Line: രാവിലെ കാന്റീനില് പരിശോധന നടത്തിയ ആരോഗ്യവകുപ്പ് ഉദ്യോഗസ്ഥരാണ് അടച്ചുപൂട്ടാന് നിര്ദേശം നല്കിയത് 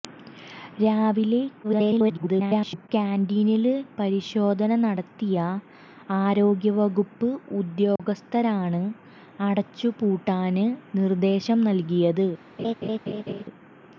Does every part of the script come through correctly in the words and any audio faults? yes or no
no